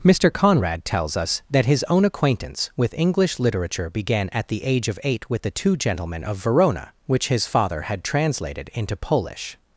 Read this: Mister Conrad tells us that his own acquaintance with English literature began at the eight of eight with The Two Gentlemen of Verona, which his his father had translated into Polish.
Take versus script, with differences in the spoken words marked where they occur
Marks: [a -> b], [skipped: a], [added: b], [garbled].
Mister Conrad tells us that his own acquaintance with English literature began at the [eight -> age] of eight with The Two Gentlemen of Verona, which his [skipped: his] father had translated into Polish.